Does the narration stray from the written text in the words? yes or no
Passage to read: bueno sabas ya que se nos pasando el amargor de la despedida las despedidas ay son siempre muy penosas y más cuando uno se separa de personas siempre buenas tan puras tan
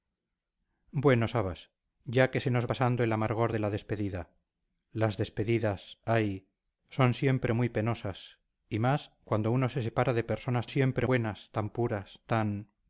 no